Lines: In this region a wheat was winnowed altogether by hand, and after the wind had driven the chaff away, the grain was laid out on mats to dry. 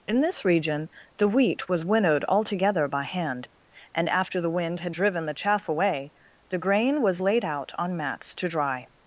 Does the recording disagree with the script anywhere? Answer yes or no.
yes